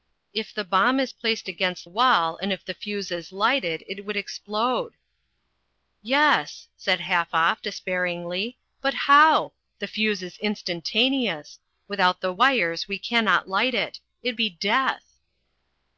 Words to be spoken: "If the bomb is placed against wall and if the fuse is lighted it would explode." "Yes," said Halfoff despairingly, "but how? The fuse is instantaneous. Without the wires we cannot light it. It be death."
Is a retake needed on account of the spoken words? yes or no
no